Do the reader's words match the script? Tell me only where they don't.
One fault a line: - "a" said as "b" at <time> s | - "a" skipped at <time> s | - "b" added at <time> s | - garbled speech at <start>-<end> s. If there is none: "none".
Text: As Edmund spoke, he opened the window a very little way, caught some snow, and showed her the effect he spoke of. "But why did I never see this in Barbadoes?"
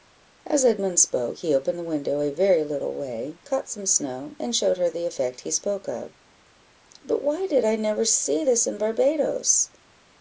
none